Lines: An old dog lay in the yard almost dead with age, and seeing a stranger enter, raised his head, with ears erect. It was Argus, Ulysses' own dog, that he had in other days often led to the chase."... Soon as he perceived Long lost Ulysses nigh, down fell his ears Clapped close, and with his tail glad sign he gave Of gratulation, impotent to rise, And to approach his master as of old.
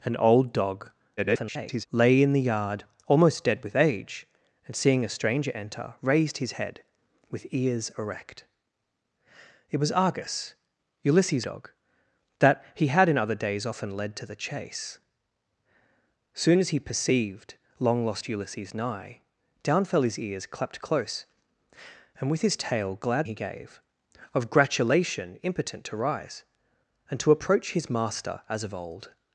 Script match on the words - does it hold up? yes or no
no